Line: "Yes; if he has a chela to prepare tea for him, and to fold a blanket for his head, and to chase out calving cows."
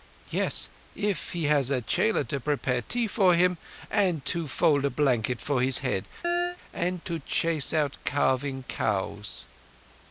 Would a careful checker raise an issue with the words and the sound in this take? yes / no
yes